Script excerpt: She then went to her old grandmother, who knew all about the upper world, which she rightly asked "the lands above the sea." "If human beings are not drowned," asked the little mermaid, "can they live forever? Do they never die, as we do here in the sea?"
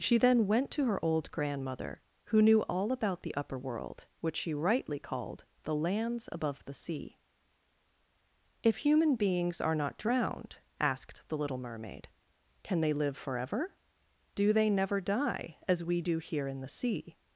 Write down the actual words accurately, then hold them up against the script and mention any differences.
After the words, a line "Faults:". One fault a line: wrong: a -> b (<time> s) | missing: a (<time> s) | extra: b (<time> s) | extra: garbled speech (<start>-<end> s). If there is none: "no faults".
She then went to her old grandmother, who knew all about the upper world, which she rightly called "the lands above the sea." "If human beings are not drowned," asked the little mermaid, "can they live forever? Do they never die, as we do here in the sea?"
Faults:
wrong: asked -> called (5.0 s)